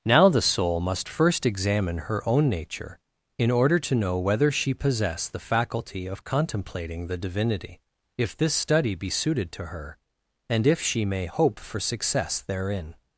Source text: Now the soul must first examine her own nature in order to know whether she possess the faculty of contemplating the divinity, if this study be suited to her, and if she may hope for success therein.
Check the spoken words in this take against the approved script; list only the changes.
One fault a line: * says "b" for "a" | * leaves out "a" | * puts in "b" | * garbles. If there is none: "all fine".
all fine